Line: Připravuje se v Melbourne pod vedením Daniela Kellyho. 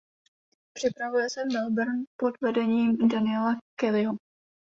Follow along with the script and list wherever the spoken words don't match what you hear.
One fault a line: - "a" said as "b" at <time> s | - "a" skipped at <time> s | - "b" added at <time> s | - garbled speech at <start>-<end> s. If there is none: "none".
none